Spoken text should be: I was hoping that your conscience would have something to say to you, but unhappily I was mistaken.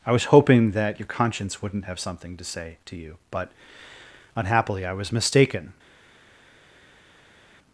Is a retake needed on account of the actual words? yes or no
yes